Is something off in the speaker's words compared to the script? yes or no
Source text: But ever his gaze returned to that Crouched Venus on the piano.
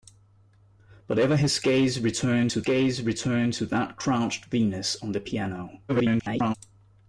yes